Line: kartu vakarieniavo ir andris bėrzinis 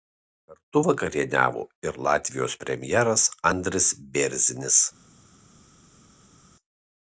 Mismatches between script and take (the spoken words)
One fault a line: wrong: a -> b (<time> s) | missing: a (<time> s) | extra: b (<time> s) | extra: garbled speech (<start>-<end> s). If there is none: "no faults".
extra: latvijos premjeras (2.1 s)